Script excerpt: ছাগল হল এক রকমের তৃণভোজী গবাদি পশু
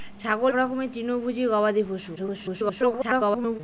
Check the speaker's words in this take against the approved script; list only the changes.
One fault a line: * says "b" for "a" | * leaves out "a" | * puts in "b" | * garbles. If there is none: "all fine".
* leaves out "হল এক"
* garbles